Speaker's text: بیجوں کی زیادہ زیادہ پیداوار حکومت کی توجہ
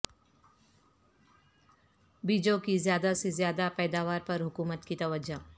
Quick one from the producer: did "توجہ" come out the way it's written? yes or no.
yes